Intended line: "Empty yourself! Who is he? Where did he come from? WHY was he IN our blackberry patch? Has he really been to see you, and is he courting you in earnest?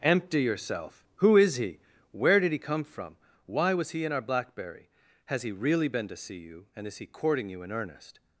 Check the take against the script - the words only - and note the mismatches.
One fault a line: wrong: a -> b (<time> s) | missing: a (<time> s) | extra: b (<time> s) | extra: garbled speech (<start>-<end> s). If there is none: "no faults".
missing: patch (4.9 s)